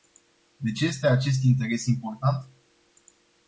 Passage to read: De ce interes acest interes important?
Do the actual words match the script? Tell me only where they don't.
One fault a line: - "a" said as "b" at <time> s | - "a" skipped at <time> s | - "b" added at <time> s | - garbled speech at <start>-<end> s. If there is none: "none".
- "interes" said as "este" at 0.8 s